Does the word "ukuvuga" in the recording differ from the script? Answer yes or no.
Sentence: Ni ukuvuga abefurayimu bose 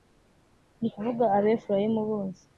no